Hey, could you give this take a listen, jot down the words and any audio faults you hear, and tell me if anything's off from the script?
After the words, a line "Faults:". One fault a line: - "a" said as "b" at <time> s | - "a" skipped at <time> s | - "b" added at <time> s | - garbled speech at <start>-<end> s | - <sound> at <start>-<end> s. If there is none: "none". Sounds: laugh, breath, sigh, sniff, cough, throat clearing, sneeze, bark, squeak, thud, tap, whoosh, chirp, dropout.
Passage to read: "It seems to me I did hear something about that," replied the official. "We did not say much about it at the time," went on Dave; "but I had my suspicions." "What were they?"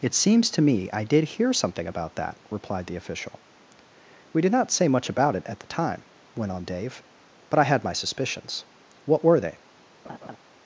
"It seems to me I did hear something about that," replied the official. "We did not say much about it at the time," went on Dave; "but I had my suspicions." "What were they?"
Faults:
- laugh at 10.0-10.4 s